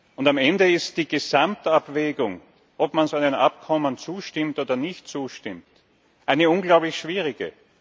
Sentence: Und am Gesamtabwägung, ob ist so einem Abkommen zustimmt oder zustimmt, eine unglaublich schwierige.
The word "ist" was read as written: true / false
false